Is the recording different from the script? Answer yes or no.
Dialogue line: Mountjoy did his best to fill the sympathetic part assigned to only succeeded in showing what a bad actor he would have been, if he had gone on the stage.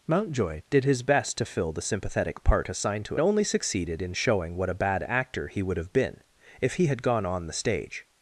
no